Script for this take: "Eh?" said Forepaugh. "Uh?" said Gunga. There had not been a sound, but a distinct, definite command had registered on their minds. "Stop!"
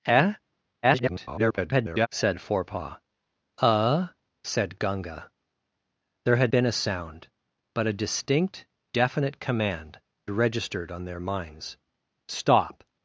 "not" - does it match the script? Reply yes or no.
no